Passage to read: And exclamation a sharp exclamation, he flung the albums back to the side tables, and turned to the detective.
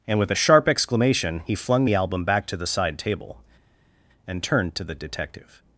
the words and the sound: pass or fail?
fail